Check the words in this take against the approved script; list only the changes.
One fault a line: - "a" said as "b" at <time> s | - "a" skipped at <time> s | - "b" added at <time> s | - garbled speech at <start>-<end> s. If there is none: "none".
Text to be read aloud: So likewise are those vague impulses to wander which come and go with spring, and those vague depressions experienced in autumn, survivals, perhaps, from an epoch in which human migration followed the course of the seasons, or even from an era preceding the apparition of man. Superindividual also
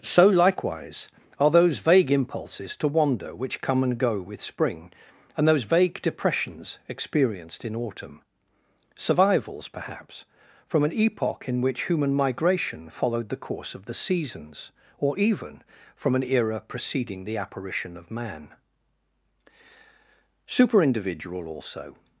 none